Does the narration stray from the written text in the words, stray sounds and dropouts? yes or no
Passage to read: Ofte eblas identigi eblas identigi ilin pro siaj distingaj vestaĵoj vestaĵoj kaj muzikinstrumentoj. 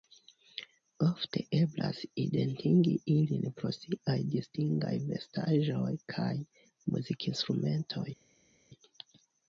yes